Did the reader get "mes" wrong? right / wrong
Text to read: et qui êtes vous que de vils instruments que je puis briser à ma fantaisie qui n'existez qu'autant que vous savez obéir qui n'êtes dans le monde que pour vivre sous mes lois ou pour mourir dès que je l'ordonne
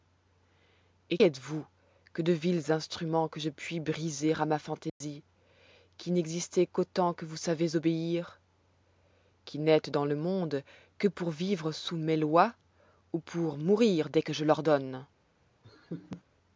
right